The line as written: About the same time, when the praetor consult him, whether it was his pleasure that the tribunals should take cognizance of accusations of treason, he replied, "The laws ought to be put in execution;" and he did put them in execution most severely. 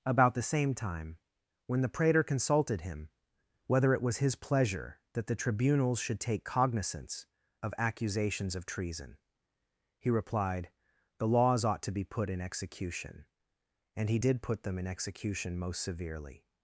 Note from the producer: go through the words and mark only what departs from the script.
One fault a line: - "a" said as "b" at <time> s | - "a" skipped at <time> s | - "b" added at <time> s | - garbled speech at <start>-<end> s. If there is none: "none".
- "consult" said as "consulted" at 2.2 s